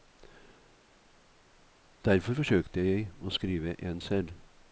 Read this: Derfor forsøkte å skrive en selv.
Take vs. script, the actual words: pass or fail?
fail